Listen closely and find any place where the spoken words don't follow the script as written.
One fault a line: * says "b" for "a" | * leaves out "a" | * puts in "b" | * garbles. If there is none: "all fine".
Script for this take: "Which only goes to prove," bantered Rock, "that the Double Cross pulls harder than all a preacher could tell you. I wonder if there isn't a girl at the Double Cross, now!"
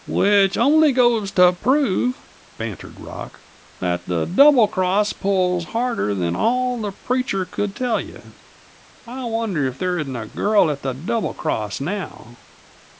* says "the" for "a"